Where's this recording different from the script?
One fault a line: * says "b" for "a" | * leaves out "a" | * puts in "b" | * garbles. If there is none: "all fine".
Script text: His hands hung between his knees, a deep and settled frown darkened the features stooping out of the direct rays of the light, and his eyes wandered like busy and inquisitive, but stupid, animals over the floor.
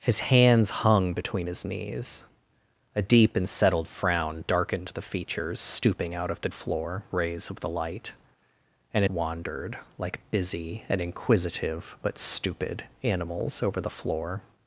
* says "floor" for "direct"
* leaves out "his eyes"